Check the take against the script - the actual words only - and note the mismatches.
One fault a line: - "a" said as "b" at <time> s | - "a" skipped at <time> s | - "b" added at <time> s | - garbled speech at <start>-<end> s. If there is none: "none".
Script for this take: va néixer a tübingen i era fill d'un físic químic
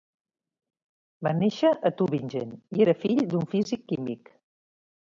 none